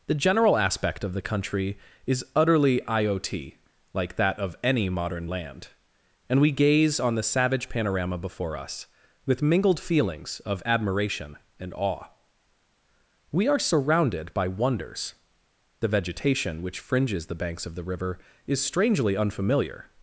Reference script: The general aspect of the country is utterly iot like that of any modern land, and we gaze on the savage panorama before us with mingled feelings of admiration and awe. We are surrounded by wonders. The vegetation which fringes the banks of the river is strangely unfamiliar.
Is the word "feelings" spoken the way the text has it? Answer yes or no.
yes